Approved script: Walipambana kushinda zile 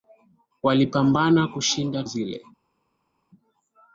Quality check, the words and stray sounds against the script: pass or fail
pass